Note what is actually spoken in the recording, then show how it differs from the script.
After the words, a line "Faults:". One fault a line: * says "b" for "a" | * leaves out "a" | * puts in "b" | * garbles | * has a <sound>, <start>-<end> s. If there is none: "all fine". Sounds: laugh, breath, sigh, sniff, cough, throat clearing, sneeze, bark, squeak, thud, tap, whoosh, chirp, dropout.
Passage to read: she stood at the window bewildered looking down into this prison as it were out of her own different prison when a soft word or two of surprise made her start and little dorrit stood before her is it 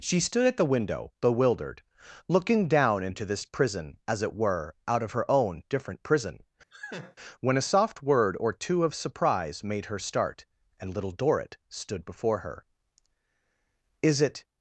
she stood at the window bewildered looking down into this prison as it were out of her own different prison when a soft word or two of surprise made her start and little dorrit stood before her is it
Faults:
* has a laugh, 6.7-7.2 s